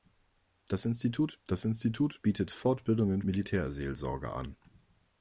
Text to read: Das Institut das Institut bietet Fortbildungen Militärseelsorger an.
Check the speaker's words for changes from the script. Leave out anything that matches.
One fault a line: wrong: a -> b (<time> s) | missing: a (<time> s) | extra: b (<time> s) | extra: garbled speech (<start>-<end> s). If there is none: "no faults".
no faults